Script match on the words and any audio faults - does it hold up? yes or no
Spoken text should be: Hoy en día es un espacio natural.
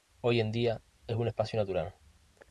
yes